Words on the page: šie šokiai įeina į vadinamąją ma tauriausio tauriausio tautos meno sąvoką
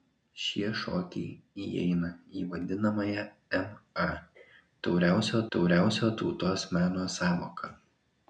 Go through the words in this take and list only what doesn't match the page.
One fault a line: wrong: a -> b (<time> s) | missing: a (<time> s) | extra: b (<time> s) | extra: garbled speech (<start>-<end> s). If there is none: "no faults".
no faults